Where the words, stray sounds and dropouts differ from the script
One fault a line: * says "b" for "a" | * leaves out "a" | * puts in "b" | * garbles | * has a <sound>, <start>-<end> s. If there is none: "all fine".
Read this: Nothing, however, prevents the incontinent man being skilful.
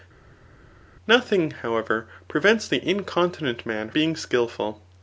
all fine